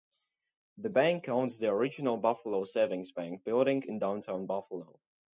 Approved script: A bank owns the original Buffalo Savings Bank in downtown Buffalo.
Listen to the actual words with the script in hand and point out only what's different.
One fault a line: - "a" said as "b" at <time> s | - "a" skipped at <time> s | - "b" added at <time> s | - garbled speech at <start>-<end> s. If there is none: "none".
- "A" said as "The" at 0.8 s
- "building" added at 3.4 s